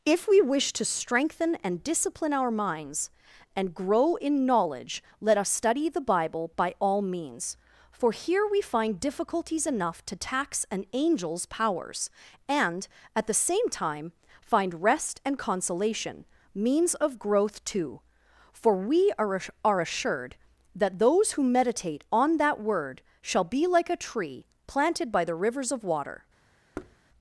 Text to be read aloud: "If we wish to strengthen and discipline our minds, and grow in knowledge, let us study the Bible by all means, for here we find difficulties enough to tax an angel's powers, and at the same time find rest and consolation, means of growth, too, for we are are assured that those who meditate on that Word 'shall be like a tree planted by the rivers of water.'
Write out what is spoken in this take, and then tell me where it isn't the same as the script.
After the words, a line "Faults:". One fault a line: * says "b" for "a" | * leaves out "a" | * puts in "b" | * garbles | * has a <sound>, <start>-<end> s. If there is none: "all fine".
"If we wish to strengthen and discipline our minds, and grow in knowledge, let us study the Bible by all means, for here we find difficulties enough to tax an angel's powers, and at the same time find rest and consolation, means of growth, too, for we are are assured that those who meditate on that Word 'shall be like a tree planted by the rivers of water.'
Faults:
* has a thud, 26.7-27.0 s